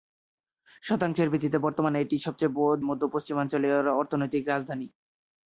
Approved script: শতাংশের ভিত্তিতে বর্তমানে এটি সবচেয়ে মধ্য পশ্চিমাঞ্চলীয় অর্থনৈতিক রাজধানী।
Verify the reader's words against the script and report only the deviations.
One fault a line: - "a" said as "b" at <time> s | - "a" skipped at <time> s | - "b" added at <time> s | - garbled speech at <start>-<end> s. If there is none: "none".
none